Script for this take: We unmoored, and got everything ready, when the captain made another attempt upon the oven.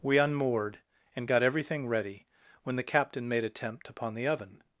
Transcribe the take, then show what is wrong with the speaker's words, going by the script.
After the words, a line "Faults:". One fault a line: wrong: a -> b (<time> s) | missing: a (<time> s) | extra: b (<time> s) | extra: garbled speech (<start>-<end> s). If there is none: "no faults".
We unmoored, and got everything ready, when the captain made attempt upon the oven.
Faults:
missing: another (3.4 s)